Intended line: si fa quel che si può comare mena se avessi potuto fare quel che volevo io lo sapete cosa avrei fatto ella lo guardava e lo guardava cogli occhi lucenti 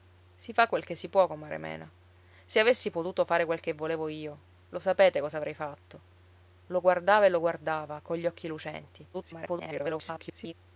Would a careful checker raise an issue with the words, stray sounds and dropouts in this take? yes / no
yes